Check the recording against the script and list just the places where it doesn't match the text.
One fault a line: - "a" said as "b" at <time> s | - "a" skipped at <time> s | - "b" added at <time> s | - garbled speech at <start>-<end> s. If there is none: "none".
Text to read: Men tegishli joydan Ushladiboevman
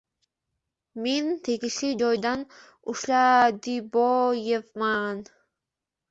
none